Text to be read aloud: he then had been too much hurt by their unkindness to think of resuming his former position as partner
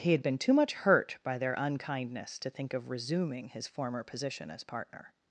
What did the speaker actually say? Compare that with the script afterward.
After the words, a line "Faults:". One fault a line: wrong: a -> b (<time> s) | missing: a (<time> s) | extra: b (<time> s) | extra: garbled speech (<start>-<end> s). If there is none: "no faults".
he had been too much hurt by their unkindness to think of resuming his former position as partner
Faults:
missing: then (0.1 s)